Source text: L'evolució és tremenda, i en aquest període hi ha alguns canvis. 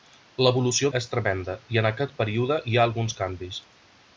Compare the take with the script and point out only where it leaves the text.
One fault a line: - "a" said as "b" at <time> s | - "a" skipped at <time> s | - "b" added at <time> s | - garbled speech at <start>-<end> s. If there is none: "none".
none